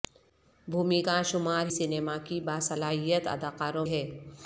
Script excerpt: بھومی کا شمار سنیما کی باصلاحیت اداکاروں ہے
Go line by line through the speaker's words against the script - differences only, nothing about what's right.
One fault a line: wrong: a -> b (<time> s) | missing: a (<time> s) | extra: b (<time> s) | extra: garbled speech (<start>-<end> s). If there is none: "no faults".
no faults